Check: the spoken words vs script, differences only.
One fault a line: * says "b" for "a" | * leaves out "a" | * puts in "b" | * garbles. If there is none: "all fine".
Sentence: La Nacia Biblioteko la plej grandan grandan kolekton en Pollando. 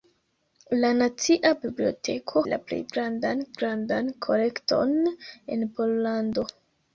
all fine